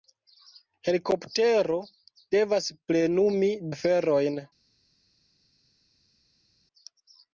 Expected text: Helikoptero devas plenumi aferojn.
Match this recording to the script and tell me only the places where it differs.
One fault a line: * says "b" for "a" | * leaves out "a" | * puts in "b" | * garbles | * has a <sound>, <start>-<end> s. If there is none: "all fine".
all fine